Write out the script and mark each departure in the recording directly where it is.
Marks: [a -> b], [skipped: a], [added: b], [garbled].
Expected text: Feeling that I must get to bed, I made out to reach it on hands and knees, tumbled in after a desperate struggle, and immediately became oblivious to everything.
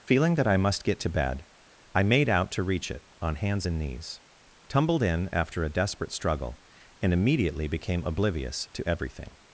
Feeling that I must get to bed, I made out to reach it on hands and knees, tumbled in after a desperate struggle, and immediately became oblivious to everything.